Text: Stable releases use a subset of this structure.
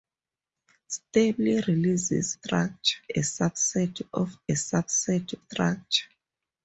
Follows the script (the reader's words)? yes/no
no